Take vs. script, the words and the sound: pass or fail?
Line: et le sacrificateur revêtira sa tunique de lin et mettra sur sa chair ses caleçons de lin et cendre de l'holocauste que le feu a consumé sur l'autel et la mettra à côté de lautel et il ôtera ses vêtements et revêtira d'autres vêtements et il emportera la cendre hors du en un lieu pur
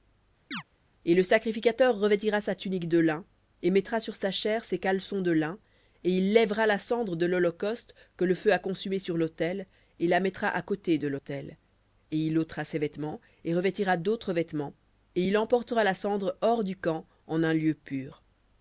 fail